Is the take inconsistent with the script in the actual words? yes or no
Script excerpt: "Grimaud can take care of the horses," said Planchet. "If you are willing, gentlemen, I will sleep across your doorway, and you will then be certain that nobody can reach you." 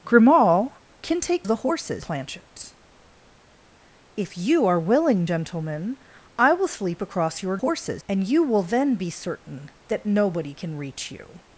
yes